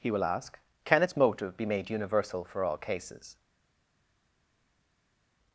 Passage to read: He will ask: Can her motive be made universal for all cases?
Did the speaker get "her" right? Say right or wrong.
wrong